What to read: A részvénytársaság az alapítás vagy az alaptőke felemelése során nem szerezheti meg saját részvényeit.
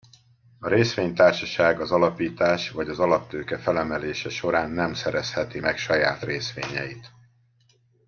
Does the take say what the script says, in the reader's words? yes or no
yes